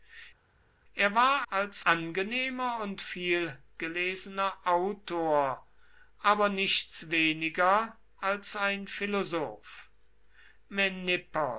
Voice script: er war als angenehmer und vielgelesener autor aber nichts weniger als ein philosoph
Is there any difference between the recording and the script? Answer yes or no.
no